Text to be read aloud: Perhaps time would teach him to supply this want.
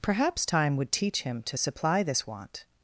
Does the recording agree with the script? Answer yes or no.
yes